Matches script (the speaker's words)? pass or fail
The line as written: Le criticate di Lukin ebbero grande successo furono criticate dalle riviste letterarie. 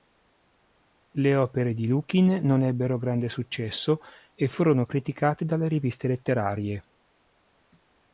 fail